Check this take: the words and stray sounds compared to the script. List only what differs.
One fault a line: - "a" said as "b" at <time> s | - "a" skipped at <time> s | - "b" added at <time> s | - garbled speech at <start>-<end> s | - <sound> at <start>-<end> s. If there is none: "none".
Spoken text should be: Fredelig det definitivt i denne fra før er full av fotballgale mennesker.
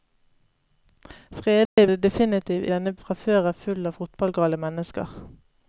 - dropout at 1.7-1.8 s